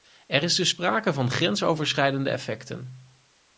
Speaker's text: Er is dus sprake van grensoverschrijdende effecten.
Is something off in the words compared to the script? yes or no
no